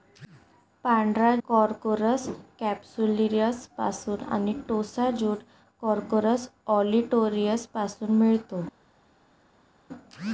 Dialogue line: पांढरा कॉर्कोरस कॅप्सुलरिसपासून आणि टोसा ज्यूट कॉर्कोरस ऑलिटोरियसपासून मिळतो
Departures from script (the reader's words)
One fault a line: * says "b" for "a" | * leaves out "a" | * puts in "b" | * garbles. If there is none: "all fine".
all fine